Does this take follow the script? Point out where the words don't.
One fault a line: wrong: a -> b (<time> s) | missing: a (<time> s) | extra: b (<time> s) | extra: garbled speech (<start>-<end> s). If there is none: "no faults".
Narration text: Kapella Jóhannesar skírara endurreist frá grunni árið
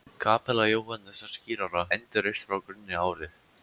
no faults